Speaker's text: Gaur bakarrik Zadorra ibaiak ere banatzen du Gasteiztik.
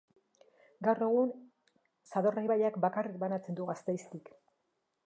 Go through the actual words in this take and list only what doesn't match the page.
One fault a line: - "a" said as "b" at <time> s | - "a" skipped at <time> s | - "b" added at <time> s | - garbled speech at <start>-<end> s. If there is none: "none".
- "bakarrik" said as "egun" at 1.1 s
- "ere" said as "bakarrik" at 2.9 s